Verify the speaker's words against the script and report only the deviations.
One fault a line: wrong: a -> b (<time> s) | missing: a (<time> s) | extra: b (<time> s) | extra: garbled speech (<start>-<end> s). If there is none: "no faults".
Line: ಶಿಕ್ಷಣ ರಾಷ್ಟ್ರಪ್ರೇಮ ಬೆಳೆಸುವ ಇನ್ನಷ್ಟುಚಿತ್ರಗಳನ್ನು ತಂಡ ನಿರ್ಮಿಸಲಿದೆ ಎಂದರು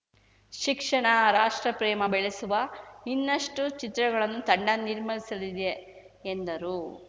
no faults